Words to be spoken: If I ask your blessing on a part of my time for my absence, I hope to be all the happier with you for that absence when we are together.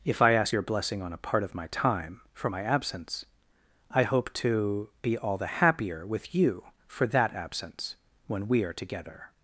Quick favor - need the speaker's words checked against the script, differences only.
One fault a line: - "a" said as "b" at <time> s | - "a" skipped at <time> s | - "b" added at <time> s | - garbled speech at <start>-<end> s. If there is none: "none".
none